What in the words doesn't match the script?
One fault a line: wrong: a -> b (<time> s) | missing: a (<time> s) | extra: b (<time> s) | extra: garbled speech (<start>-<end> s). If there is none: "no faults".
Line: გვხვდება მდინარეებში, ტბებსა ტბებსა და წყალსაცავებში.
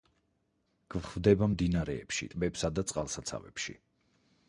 missing: ტბებსა (2.7 s)